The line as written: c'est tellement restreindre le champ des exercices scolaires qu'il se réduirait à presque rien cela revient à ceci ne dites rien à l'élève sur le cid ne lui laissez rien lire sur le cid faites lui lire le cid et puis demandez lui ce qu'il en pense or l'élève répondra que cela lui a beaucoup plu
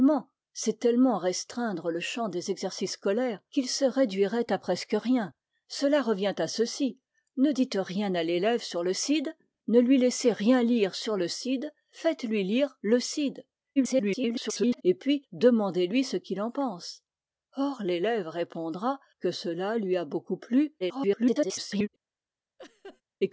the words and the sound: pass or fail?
fail